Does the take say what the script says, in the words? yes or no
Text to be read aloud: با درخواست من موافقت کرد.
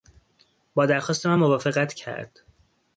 yes